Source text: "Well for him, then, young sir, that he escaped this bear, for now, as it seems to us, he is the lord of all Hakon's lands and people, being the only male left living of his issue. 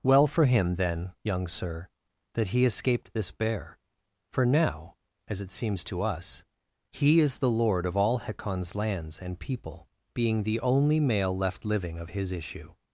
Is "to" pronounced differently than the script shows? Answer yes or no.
no